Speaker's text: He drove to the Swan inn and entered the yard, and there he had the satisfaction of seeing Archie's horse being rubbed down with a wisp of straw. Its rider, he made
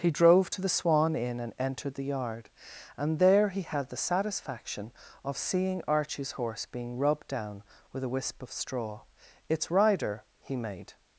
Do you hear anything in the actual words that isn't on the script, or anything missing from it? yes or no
no